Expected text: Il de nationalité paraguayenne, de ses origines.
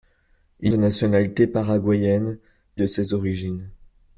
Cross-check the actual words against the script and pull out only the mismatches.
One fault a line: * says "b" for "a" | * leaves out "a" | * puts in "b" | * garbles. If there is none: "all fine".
all fine